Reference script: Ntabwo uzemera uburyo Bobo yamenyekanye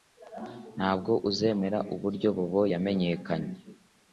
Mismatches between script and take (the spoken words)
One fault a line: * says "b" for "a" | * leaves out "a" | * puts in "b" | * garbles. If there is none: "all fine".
all fine